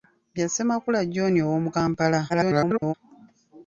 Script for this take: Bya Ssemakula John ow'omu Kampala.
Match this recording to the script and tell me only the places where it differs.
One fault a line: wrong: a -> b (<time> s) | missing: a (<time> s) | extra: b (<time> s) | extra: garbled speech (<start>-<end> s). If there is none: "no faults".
extra: garbled speech (2.3-2.9 s)